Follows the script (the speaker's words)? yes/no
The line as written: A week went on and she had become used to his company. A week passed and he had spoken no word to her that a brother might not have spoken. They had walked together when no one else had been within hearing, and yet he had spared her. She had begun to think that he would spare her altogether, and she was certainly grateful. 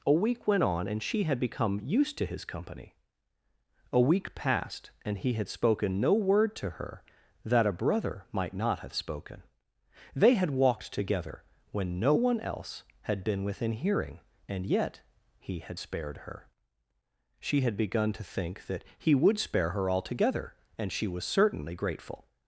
yes